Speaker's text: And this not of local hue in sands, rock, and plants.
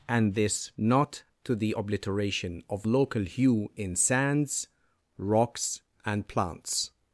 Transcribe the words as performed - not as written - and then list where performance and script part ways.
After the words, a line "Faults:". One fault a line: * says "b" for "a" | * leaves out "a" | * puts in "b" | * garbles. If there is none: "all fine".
And this not to the obliteration of local hue in sands, rocks, and plants.
Faults:
* puts in "to the obliteration"
* says "rocks" for "rock"